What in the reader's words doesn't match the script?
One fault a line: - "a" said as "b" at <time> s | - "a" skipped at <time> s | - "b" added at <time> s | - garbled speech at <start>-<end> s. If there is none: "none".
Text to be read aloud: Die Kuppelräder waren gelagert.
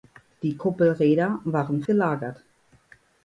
none